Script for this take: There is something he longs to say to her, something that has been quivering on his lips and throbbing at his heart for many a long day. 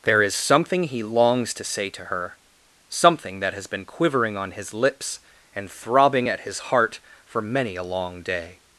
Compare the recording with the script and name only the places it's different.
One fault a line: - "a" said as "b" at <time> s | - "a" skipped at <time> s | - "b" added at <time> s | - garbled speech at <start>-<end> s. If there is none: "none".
none